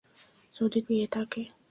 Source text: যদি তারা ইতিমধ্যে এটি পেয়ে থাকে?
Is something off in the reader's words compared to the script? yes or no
yes